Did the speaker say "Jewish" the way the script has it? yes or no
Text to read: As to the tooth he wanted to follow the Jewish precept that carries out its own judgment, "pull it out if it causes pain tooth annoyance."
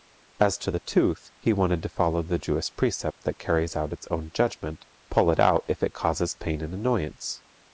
yes